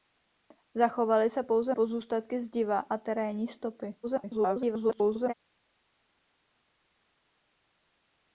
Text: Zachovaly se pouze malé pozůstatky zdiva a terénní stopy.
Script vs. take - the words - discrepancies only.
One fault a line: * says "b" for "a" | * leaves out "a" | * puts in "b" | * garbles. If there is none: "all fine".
* leaves out "malé"
* garbles